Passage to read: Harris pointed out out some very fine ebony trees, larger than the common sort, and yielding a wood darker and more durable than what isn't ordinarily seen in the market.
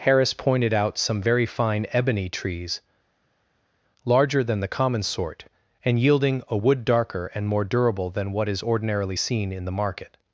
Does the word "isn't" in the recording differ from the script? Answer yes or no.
yes